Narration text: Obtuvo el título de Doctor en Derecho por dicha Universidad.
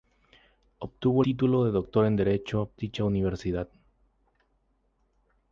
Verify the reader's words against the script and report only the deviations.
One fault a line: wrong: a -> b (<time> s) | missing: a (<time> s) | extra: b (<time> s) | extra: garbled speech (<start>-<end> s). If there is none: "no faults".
missing: el (1.2 s)
missing: por (2.7 s)